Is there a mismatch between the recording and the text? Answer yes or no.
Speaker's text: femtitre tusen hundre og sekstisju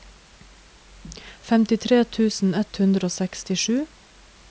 yes